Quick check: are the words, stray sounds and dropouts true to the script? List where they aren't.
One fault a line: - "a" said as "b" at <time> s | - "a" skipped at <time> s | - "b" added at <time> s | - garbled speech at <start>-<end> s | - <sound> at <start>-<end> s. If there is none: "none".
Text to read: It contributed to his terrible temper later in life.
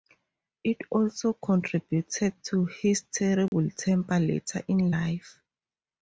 - "also" added at 0.9 s
- dropout at 3.5-3.5 s